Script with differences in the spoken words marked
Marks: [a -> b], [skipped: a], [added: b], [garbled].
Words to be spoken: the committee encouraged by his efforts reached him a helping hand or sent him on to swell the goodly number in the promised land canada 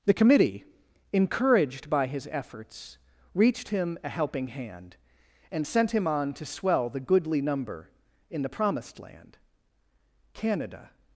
the committee encouraged by his efforts reached him a helping hand [or -> and] sent him on to swell the goodly number in the promised land canada